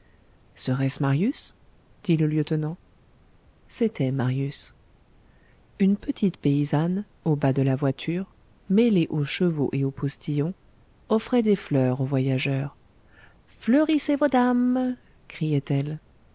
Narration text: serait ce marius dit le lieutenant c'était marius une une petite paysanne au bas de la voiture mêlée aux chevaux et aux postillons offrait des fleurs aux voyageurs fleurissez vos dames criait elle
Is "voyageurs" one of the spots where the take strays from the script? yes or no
no